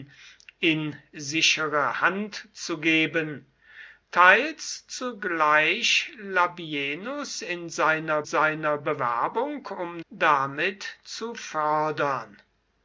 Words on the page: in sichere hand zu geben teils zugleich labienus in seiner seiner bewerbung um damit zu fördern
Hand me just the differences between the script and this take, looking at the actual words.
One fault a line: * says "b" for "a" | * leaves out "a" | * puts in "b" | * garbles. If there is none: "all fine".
all fine